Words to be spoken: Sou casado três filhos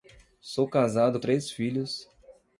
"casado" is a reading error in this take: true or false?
false